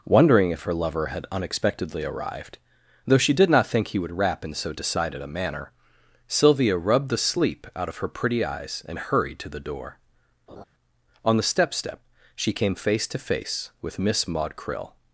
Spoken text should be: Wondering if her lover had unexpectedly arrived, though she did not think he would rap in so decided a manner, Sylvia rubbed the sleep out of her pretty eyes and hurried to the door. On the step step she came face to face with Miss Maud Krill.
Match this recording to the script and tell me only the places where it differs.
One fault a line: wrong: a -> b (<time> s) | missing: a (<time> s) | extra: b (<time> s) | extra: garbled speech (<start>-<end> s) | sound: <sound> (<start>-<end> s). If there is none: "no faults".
sound: laugh (10.5-10.6 s)